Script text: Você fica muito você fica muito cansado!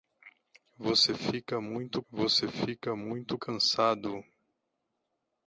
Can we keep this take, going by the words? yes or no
yes